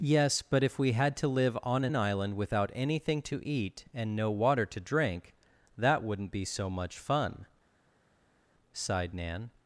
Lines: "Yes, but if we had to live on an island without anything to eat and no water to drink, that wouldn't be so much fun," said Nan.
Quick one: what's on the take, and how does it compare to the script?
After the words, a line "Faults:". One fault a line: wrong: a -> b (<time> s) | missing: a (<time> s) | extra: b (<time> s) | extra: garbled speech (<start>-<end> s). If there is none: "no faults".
"Yes, but if we had to live on an island without anything to eat and no water to drink, that wouldn't be so much fun," sighed Nan.
Faults:
wrong: said -> sighed (8.7 s)